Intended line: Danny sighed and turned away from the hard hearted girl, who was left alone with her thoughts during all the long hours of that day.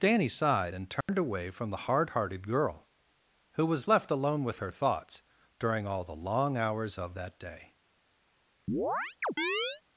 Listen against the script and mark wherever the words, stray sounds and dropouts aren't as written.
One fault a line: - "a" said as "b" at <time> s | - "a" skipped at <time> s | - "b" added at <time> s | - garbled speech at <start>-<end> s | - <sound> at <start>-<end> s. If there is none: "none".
- dropout at 1.0-1.1 s
- chirp at 8.7-9.8 s